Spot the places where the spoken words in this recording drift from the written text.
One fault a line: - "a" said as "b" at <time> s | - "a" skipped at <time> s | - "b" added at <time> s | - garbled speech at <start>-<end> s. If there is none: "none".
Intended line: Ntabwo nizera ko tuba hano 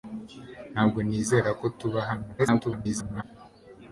- garbled speech at 2.4-3.2 s